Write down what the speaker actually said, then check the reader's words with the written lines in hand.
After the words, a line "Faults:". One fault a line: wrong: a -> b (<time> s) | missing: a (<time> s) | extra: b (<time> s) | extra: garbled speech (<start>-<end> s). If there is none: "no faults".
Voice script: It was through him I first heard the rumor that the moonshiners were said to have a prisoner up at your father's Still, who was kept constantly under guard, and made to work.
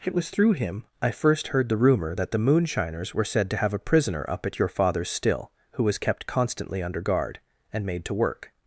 It was through him I first heard the rumor that the moonshiners were said to have a prisoner up at your father's Still, who was kept constantly under guard, and made to work.
Faults:
no faults